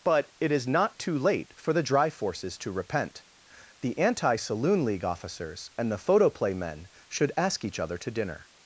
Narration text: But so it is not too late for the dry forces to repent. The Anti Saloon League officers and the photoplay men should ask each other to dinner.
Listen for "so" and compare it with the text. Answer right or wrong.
wrong